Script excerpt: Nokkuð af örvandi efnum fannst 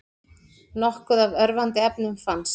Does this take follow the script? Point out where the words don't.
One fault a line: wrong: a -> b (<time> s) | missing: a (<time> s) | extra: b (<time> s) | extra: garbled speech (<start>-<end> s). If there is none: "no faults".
no faults